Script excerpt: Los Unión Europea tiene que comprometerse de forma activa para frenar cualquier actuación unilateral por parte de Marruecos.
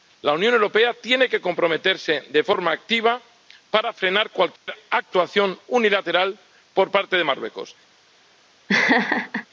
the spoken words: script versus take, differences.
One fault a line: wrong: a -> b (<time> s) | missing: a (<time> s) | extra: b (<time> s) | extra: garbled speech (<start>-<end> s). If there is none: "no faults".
wrong: Los -> La (0.2 s)